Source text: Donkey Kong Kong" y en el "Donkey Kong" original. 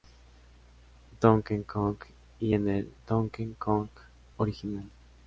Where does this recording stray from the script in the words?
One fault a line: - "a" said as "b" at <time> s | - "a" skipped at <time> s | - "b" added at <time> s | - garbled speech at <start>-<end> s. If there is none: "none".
- "Kong" skipped at 2.0 s